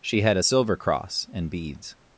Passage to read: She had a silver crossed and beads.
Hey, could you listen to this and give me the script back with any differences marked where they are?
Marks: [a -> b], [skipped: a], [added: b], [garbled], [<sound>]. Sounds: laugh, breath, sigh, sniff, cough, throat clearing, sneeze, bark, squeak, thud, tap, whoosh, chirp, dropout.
She had a silver [crossed -> cross] and beads.